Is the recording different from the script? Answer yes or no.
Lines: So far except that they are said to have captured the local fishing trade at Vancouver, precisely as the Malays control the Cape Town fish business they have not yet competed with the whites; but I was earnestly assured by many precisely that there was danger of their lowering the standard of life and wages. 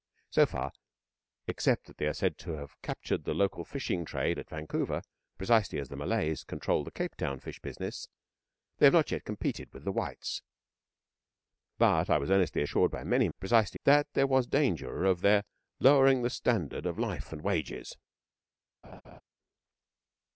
no